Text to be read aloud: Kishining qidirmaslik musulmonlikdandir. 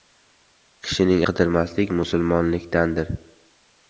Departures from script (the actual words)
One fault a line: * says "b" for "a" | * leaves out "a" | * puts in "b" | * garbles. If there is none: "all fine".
all fine